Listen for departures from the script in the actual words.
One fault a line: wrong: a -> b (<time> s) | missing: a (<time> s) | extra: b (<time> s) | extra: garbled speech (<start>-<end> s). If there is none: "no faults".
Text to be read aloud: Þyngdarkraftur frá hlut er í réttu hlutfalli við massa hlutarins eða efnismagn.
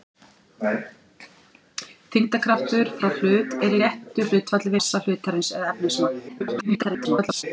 missing: við (4.7 s)
extra: garbled speech (6.3-7.4 s)